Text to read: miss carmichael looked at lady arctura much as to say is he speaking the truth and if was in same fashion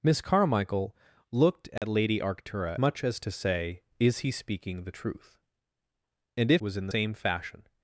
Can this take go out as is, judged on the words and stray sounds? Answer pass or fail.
fail